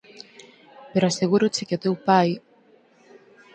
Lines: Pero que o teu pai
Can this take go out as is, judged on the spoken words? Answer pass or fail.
fail